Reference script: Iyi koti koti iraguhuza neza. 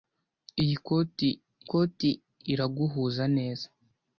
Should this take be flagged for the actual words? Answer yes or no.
no